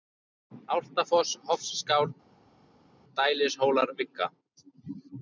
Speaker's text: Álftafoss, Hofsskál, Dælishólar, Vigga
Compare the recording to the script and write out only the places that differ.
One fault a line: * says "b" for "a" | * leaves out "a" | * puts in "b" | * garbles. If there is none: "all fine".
all fine